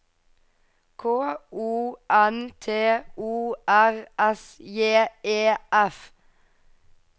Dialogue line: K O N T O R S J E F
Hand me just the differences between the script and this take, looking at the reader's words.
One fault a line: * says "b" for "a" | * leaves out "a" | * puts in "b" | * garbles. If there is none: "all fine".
all fine